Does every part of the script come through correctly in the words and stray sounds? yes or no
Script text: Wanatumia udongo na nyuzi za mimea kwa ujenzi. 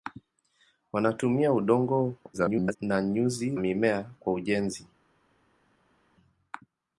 no